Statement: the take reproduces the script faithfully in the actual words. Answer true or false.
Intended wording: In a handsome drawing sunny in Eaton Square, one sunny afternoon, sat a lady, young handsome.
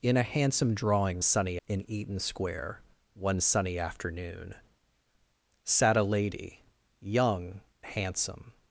true